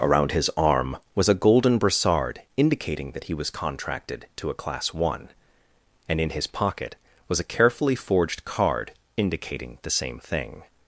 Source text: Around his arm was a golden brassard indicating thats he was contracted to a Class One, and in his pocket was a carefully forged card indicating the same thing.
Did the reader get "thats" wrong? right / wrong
wrong